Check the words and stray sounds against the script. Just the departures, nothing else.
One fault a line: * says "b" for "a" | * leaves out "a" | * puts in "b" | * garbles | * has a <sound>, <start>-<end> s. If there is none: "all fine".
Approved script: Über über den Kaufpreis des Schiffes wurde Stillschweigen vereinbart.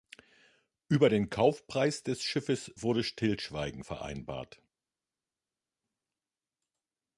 * leaves out "über"